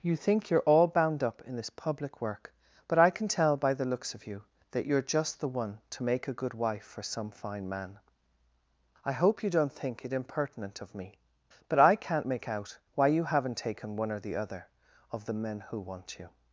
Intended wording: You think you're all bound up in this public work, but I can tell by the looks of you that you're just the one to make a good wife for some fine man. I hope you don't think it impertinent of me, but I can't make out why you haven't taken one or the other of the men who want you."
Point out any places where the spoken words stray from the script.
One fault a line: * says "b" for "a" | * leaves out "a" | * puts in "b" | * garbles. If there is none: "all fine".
all fine